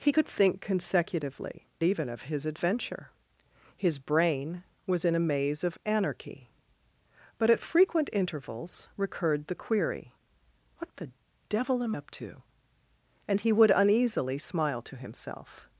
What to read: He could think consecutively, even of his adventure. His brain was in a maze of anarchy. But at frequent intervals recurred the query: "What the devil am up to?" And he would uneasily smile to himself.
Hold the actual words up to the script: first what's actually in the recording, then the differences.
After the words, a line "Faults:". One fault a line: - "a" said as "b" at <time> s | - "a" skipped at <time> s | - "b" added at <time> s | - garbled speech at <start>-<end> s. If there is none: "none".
He could think consecutively, even of his adventure. His brain was in a maze of anarchy. But at frequent intervals recurred the query: "What the devil am up to?" And he would uneasily smile to himself.
Faults:
none